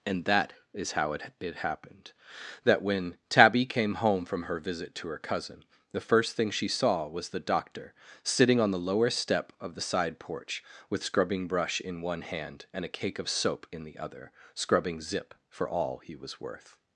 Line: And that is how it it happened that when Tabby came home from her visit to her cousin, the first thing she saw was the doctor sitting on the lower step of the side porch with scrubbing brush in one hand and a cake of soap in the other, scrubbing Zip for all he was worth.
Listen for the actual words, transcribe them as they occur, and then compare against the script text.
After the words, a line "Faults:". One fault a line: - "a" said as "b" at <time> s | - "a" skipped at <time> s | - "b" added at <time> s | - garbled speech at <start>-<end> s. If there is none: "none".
And that is how it it happened that when Tabby came home from her visit to her cousin, the first thing she saw was the doctor sitting on the lower step of the side porch with scrubbing brush in one hand and a cake of soap in the other, scrubbing Zip for all he was worth.
Faults:
none